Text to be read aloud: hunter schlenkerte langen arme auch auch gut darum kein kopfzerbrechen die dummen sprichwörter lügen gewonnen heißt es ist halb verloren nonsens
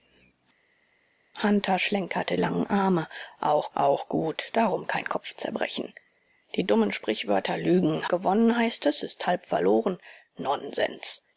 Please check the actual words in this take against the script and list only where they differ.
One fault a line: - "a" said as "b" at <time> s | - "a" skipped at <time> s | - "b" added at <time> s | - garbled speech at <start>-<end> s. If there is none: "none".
none